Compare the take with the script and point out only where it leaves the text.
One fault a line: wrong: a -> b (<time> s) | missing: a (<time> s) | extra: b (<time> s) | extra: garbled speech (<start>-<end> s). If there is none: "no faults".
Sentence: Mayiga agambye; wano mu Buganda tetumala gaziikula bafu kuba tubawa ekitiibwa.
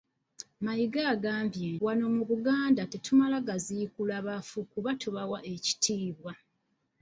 no faults